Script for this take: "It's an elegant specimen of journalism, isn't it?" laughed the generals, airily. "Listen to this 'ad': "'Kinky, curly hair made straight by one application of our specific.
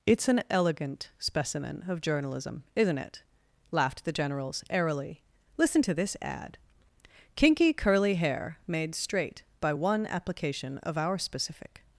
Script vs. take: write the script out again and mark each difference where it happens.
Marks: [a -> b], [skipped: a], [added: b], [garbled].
"It's an elegant specimen of journalism, isn't it?" laughed the generals, airily. "Listen to this 'ad': "'Kinky, curly hair made straight by one application of our specific.